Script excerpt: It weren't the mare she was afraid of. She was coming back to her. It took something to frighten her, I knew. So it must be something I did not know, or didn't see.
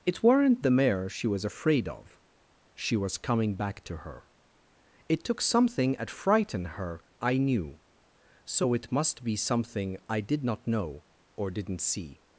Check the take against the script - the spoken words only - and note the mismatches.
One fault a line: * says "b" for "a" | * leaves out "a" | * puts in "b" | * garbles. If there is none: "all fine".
* says "at" for "to"